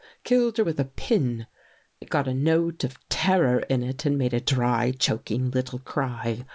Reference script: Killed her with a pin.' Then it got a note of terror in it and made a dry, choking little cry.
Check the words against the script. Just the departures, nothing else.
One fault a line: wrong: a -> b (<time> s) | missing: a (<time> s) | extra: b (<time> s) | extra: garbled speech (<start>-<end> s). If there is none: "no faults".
missing: Then (1.4 s)